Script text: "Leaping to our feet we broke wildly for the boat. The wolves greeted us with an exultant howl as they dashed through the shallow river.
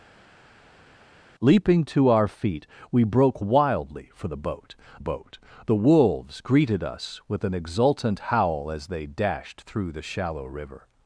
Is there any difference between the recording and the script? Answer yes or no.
yes